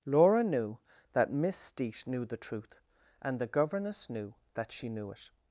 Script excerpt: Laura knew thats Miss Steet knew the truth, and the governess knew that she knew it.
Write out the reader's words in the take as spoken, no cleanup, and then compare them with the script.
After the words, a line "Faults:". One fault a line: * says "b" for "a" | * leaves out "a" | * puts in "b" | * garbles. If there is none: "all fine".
Laura knew that Miss Steet knew the truth, and the governess knew that she knew it.
Faults:
* says "that" for "thats"